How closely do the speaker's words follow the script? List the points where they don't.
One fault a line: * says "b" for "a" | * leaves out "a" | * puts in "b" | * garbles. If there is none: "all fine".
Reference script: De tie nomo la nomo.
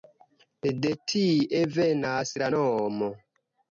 * says "venas" for "nomo"